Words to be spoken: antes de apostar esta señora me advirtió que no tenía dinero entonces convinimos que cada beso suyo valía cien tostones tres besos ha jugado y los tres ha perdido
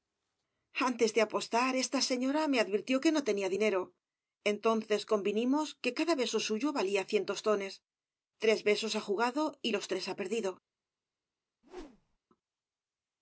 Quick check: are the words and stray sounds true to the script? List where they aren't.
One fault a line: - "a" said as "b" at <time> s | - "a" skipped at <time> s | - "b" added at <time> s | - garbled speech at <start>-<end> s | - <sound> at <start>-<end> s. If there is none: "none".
- whoosh at 11.6-12.2 s